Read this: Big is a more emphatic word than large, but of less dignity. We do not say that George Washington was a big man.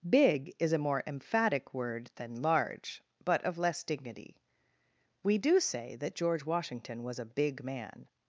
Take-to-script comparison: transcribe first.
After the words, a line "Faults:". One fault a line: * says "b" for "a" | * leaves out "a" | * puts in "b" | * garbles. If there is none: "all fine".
Big is a more emphatic word than large, but of less dignity. We do say that George Washington was a big man.
Faults:
* leaves out "not"